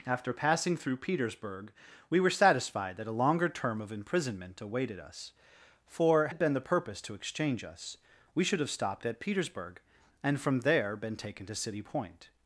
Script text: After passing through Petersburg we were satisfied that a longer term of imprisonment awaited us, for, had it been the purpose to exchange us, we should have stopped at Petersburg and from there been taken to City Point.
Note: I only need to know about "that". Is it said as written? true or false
true